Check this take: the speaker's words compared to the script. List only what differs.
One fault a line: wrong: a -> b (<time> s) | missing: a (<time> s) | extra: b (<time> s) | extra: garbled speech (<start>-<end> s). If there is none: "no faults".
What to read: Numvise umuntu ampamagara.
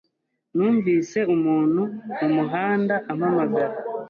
extra: mumuhanda (2.2 s)